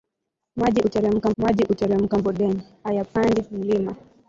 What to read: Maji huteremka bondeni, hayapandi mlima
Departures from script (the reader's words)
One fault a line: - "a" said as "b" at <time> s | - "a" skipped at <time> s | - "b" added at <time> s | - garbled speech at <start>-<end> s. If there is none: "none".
- "maji huteremka" added at 1.4 s